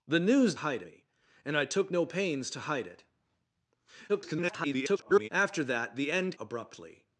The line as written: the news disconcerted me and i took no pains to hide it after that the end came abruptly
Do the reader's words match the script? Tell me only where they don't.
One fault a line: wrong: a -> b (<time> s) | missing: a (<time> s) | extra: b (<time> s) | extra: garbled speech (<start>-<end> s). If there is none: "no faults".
wrong: disconcerted -> hide (0.6 s)
extra: garbled speech (4.1-5.3 s)
missing: came (6.4 s)